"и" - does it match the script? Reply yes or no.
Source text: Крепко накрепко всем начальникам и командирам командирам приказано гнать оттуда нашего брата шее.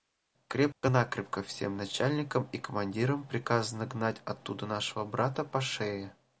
yes